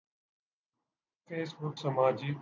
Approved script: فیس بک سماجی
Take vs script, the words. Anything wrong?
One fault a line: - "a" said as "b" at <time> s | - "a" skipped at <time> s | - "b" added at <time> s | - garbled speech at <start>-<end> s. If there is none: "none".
none